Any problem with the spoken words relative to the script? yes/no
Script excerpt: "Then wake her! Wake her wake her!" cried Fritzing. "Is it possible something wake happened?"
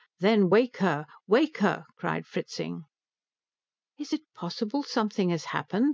yes